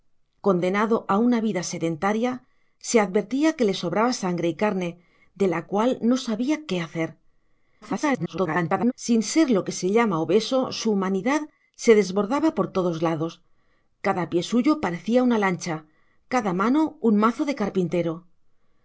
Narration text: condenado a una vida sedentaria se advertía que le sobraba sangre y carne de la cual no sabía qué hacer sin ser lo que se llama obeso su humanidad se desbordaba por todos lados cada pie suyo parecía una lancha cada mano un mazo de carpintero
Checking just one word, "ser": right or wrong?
right